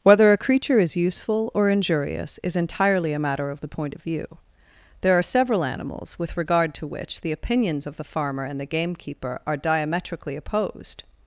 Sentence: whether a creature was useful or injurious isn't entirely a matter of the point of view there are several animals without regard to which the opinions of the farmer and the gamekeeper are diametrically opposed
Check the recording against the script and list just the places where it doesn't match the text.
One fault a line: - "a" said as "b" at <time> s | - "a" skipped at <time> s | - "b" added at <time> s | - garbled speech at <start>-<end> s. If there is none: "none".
- "was" said as "is" at 0.8 s
- "isn't" said as "is" at 2.4 s
- "without" said as "with" at 6.2 s